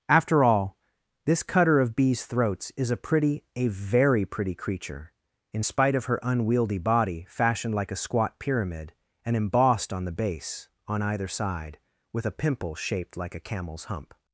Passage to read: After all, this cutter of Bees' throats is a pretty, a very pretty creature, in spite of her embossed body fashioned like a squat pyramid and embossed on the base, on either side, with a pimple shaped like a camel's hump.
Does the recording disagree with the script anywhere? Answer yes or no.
yes